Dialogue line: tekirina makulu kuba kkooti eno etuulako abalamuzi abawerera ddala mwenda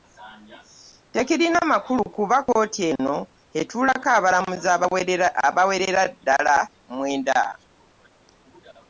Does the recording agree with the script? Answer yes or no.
yes